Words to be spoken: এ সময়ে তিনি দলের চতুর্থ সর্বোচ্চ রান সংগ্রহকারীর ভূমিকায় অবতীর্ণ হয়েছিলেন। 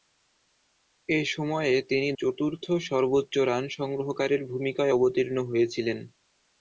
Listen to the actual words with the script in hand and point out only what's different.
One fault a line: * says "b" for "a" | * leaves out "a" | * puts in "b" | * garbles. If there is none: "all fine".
* leaves out "দলের"